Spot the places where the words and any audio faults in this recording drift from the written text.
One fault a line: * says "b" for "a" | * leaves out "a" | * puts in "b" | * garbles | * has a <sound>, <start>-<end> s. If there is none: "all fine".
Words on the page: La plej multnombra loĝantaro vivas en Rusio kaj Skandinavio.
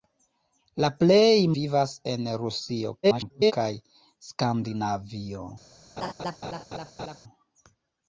* leaves out "multnombra loĝantaro"
* garbles
* has a laugh, 6.0-7.2 s